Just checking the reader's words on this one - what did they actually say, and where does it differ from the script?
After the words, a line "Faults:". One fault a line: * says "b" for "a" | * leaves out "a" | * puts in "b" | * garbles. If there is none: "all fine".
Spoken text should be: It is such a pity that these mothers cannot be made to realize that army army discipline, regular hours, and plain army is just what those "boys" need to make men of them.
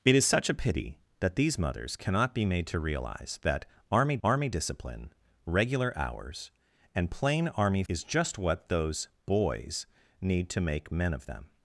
It is such a pity that these mothers cannot be made to realize that army army discipline, regular hours, and plain army is just what those "boys" need to make men of them.
Faults:
all fine